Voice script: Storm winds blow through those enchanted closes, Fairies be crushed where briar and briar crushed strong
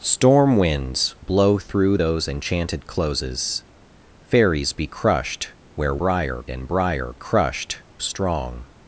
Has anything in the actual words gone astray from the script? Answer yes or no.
no